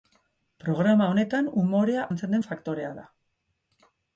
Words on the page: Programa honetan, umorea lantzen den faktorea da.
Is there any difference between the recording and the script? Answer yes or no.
no